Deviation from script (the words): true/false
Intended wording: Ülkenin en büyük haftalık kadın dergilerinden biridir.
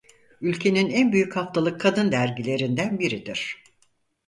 false